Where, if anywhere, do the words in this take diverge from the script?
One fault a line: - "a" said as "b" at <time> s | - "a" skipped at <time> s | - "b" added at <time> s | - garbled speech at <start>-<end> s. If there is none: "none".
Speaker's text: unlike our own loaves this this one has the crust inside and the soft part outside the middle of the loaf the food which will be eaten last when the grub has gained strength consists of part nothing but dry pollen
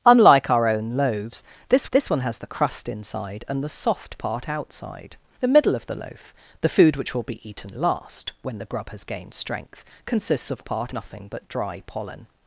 none